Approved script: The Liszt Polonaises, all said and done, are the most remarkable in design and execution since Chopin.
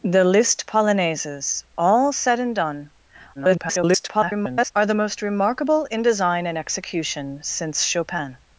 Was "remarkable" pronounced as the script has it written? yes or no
yes